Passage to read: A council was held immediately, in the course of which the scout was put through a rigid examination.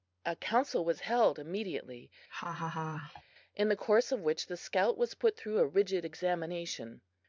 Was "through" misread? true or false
false